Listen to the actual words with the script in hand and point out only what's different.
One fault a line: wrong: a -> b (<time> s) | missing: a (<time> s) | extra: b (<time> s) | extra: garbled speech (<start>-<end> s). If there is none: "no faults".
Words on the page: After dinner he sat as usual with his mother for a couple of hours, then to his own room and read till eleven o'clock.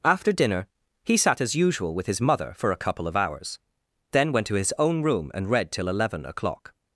extra: went (4.3 s)